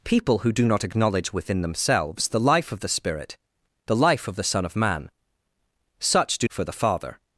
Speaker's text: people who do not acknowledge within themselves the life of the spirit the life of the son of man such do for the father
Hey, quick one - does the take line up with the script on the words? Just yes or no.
yes